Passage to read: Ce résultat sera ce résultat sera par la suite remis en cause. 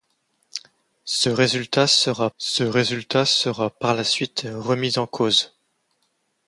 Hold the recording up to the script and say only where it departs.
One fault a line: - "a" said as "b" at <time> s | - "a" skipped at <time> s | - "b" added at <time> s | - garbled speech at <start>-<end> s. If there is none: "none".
none